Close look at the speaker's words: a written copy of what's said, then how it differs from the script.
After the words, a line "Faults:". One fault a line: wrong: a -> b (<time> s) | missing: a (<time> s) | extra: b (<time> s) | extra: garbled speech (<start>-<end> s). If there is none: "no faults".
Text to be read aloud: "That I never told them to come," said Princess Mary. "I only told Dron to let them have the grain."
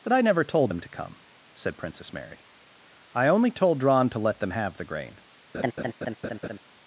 "That I never told them to come," said Princess Mary. "I only told Dron to let them have the grain."
Faults:
no faults